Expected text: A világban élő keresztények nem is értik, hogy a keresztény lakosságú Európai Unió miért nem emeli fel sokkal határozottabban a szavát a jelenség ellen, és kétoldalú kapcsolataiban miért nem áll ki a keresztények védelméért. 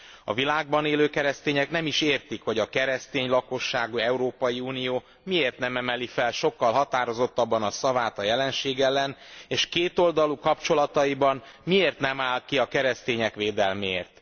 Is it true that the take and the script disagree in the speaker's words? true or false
false